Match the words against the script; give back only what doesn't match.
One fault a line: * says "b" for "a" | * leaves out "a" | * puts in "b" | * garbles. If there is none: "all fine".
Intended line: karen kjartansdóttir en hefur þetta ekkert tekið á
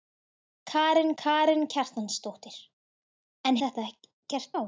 * puts in "karen"
* leaves out "hefur"
* leaves out "tekið"